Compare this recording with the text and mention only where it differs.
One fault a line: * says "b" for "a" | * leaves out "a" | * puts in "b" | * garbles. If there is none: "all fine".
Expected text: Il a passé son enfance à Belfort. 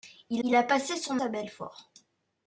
* puts in "il"
* leaves out "enfance"